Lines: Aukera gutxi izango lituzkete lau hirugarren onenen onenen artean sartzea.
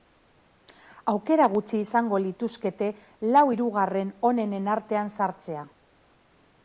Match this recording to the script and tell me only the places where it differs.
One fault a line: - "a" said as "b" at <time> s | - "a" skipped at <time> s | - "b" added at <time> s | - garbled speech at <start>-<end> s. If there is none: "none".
- "onenen" skipped at 4.7 s